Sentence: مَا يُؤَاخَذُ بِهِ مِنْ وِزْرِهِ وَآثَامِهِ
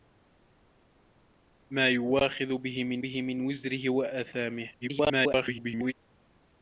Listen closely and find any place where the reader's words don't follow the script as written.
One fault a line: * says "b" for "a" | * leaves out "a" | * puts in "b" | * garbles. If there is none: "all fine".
* puts in "بِهِ مِنْ"
* garbles